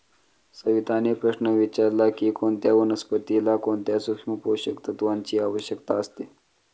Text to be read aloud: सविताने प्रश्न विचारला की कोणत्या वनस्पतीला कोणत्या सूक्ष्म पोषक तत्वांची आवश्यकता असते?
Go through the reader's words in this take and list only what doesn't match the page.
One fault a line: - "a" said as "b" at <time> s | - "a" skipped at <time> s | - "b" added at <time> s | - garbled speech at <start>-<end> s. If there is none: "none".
none